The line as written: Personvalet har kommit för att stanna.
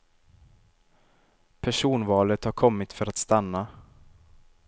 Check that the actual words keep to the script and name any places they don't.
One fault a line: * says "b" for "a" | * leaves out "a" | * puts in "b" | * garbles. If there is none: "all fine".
all fine